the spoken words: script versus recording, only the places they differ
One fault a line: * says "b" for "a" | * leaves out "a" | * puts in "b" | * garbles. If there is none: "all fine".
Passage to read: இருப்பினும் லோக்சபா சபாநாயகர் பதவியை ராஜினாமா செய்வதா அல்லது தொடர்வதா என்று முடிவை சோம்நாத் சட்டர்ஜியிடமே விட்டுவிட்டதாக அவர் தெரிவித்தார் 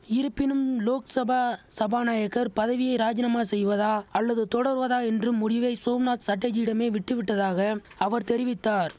all fine